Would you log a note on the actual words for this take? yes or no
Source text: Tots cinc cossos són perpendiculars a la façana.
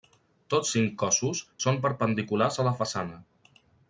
no